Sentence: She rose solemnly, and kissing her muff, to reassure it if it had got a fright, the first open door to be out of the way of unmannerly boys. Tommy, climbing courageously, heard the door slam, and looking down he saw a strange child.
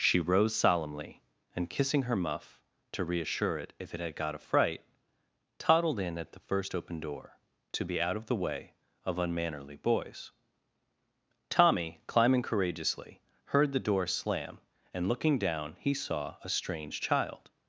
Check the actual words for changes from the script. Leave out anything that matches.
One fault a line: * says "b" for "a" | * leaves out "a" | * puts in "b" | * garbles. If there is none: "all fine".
* puts in "toddled in at"